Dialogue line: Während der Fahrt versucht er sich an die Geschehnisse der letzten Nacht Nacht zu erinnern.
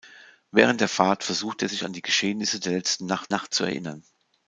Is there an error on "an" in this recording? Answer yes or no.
no